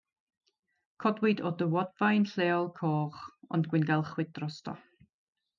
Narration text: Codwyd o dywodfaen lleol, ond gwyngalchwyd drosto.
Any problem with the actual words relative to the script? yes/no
yes